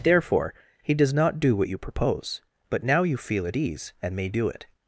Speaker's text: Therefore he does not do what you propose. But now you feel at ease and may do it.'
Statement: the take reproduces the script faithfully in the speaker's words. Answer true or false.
true